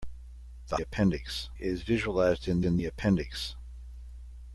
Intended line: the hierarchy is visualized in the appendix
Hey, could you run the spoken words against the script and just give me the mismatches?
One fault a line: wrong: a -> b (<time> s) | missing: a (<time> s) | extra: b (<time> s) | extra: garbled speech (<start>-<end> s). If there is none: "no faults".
wrong: hierarchy -> appendix (0.8 s)
extra: in (2.6 s)